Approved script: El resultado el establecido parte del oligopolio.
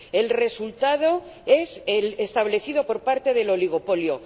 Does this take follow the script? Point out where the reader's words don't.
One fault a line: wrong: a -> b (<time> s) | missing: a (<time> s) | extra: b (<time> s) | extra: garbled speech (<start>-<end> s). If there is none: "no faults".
extra: es (1.4 s)
extra: por (2.8 s)